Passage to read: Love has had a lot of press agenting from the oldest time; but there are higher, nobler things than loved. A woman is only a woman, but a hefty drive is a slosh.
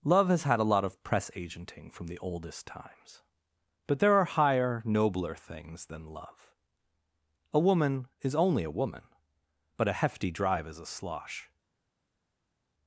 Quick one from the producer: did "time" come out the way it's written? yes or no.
no